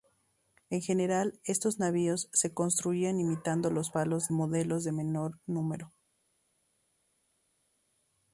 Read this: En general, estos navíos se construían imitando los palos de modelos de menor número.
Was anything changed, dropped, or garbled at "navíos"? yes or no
no